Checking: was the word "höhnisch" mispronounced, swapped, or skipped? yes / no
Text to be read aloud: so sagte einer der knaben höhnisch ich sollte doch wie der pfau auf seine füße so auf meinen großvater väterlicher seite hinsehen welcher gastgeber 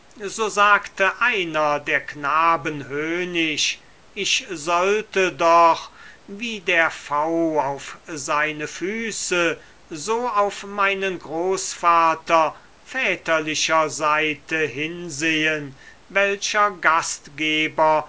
no